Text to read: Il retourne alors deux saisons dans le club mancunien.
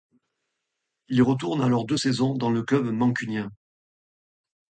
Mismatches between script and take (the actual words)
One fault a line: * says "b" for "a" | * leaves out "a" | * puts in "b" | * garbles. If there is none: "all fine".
all fine